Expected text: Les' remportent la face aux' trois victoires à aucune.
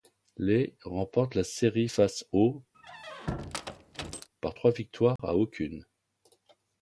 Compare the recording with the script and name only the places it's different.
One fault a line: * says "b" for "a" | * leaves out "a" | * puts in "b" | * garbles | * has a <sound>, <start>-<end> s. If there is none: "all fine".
* puts in "série"
* has a squeak, 2.7-4.3 s
* puts in "par"
* has a dropout, 5.2-5.2 s